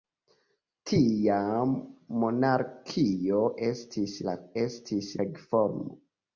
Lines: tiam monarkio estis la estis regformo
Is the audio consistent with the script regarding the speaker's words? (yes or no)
yes